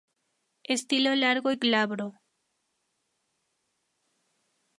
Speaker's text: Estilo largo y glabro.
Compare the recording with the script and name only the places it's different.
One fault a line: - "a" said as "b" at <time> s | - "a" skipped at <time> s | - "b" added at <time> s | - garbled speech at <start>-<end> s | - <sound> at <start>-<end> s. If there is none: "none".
none